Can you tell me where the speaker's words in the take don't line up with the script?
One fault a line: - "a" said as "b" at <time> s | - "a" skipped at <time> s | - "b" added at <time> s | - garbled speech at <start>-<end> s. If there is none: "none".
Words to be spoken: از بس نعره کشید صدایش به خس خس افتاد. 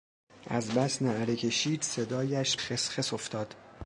- "به" skipped at 2.6 s